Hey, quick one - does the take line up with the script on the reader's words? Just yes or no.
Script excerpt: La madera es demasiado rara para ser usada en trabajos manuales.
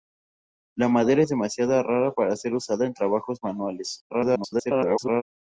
no